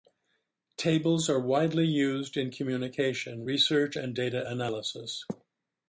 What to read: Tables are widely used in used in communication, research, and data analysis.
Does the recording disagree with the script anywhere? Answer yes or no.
yes